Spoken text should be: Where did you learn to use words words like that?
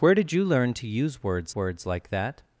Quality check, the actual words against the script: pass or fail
pass